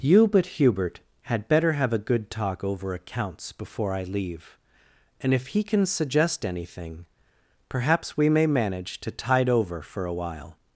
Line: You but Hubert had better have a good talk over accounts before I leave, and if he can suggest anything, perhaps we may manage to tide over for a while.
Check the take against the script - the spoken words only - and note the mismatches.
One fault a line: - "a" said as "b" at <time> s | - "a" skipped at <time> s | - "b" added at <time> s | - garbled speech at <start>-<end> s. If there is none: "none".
none